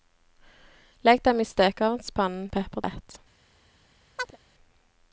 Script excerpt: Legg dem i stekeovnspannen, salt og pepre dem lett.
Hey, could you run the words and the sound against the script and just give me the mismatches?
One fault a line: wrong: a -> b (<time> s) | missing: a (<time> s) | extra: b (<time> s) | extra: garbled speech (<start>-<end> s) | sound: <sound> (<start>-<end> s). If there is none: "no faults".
missing: salt (2.5 s)
missing: dem (2.8 s)
sound: chirp (4.2-4.4 s)